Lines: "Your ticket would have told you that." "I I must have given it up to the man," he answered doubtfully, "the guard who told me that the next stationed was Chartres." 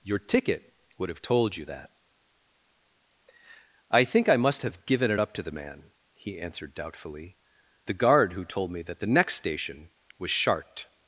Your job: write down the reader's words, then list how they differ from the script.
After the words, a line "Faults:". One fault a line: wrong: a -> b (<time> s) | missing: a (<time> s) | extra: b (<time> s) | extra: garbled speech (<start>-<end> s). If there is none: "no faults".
"Your ticket would have told you that." "I think I must have given it up to the man," he answered doubtfully, "the guard who told me that the next station was Chartres."
Faults:
extra: think (4.0 s)
wrong: stationed -> station (9.3 s)